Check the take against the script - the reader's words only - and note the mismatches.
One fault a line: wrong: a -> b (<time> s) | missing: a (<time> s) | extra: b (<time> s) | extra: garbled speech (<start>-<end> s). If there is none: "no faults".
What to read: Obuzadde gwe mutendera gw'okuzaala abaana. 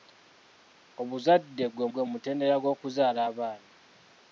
extra: gwe (1.9 s)